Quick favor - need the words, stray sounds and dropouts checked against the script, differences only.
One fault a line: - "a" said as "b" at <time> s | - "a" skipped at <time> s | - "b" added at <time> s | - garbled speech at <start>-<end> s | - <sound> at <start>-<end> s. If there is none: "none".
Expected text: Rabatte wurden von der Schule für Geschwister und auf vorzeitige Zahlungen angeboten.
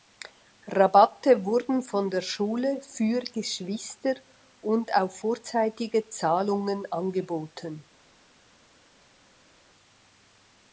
none